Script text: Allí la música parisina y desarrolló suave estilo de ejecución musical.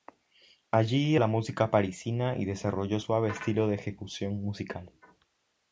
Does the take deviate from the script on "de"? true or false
false